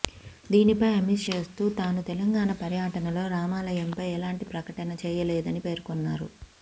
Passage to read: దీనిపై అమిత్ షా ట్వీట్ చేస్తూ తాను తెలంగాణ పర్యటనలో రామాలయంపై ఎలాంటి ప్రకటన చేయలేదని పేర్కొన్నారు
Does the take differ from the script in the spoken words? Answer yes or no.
yes